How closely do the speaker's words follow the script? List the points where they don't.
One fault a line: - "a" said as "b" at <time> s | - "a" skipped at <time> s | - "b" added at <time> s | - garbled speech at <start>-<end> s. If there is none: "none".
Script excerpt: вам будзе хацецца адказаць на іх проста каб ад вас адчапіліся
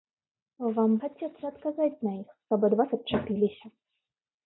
- "будзе" skipped at 0.9 s
- "проста" skipped at 2.3 s